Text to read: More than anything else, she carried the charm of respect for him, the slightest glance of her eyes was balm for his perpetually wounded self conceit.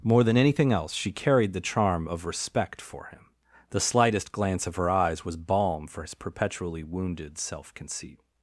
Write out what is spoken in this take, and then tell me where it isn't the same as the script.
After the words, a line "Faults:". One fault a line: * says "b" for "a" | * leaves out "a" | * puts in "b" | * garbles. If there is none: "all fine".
More than anything else, she carried the charm of respect for him, the slightest glance of her eyes was balm for his perpetually wounded self conceit.
Faults:
all fine